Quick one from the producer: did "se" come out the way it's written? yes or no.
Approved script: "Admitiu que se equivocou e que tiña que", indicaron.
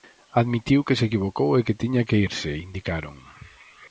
yes